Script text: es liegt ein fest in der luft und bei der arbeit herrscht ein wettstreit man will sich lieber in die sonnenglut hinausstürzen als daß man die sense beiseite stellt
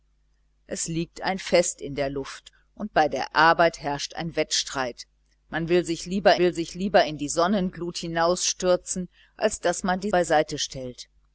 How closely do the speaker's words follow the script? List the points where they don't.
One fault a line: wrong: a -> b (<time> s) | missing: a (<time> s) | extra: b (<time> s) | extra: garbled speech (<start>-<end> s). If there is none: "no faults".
extra: will sich lieber (6.4 s)
missing: sense (10.1 s)